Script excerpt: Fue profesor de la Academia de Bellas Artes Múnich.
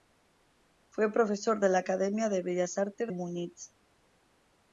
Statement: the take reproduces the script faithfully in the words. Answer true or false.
true